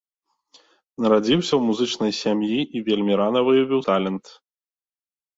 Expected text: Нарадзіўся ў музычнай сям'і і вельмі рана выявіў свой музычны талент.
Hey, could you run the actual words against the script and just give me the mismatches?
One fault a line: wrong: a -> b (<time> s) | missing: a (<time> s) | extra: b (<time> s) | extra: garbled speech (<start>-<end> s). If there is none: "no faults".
missing: свой музычны (3.8 s)